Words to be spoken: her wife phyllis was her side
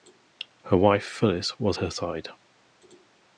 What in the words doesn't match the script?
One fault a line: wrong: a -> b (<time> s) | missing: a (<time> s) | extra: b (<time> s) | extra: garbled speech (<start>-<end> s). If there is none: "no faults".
no faults